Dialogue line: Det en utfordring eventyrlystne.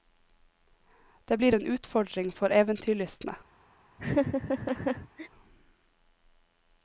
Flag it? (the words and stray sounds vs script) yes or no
yes